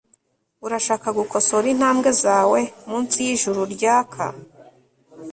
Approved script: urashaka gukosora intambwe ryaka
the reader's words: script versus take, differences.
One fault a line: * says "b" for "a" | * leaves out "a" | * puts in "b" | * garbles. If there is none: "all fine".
* puts in "zawe munsi yijuru"